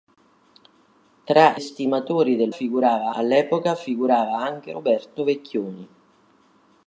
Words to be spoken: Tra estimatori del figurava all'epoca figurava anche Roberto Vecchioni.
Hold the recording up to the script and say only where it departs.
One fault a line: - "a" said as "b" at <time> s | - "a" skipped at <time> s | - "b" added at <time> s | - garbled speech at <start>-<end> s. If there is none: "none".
none